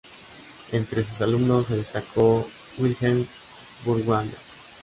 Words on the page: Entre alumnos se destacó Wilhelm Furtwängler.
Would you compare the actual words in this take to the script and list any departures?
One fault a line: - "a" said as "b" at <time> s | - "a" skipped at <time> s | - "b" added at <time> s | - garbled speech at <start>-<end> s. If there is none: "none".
- "sus" added at 1.0 s